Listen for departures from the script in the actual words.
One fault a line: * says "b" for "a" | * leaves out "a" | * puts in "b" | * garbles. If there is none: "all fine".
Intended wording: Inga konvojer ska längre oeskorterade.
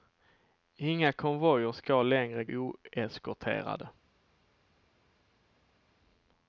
all fine